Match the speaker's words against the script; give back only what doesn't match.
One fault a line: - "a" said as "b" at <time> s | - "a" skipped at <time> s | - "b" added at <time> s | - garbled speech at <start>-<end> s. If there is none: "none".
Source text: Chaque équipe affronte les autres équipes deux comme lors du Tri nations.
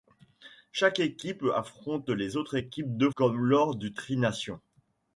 none